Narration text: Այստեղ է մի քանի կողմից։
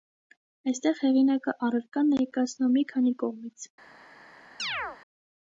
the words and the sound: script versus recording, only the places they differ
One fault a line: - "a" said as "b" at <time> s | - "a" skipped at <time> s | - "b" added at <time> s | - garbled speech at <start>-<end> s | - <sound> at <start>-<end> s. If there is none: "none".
- "հեղինակը առարկան ներկայացնում" added at 1.0 s
- chirp at 4.6-5.0 s